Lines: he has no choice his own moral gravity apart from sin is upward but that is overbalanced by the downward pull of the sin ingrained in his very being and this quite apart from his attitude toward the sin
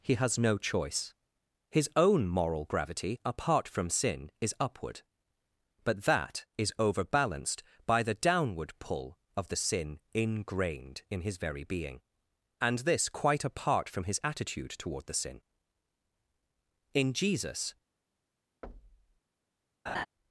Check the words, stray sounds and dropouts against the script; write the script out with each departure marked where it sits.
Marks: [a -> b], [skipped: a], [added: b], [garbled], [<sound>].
he has no choice his own moral gravity apart from sin is upward but that is overbalanced by the downward pull of the sin ingrained in his very being and this quite apart from his attitude toward the sin [added: in jesus] [thud] [laugh]